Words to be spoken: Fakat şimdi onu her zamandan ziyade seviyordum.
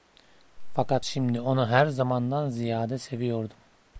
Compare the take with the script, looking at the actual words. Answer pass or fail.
pass